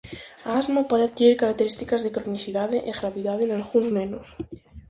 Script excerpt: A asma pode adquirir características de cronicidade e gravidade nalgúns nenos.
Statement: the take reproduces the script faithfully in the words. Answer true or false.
true